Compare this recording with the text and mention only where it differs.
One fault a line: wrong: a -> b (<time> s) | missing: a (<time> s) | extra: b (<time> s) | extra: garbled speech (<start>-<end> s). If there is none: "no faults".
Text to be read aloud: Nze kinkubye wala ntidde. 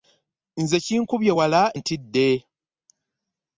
no faults